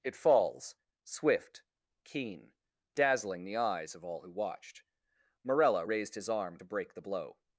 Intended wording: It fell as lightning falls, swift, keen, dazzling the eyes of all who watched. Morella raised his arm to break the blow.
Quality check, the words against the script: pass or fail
fail